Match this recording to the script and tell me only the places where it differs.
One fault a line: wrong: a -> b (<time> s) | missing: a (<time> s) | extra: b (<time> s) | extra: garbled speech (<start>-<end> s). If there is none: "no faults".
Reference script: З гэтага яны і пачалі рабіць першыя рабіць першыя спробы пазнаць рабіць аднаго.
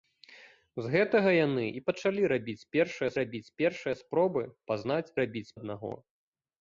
no faults